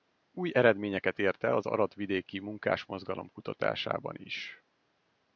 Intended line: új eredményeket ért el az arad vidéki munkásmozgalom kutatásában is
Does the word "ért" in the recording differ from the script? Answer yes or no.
no